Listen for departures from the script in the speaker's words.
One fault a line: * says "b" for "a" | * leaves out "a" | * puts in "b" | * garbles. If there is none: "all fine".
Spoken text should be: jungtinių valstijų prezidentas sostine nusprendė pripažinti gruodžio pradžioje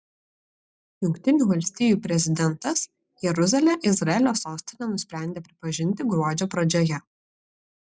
* puts in "jeruzalę izraelio"